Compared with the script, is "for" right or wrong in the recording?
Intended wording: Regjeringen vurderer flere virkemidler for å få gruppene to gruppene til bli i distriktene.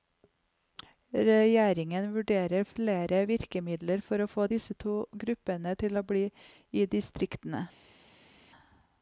right